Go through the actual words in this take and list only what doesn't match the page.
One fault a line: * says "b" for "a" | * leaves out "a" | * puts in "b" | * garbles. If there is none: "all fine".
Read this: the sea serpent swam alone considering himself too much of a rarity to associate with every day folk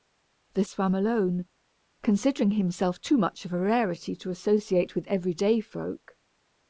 * leaves out "sea serpent"